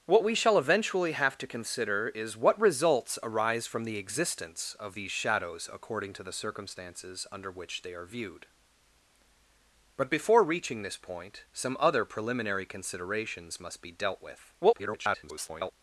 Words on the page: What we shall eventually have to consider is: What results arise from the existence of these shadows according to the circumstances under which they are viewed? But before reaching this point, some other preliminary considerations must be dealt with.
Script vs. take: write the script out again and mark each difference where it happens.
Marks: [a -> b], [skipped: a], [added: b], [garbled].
What we shall eventually have to consider is: What results arise from the existence of these shadows according to the circumstances under which they are viewed? But before reaching this point, some other preliminary considerations must be dealt with. [garbled]